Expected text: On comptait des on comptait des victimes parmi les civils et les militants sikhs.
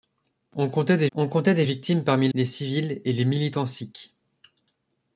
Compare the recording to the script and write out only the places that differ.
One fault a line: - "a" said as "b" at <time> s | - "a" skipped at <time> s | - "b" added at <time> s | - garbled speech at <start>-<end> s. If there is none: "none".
none